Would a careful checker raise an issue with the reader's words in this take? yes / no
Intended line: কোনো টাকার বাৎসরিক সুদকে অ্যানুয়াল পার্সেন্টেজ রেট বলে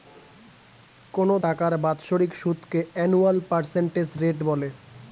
no